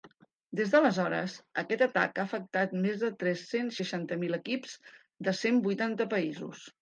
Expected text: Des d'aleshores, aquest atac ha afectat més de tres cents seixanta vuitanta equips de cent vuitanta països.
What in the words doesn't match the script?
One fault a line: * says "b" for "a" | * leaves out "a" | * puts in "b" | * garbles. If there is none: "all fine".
* says "mil" for "vuitanta"